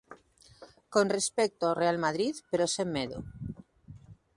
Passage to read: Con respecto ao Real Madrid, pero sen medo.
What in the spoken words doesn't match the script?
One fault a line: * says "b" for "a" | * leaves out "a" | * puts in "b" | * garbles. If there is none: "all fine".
all fine